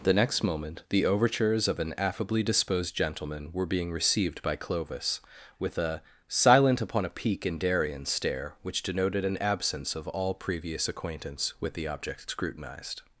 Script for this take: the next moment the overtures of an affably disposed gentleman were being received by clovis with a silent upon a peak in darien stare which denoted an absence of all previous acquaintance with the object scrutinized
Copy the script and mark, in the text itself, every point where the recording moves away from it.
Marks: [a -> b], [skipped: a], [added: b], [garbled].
the next moment the overtures of an affably disposed gentleman were being received by clovis with a silent upon a peak in darien stare which denoted an absence of all previous acquaintance with the object scrutinized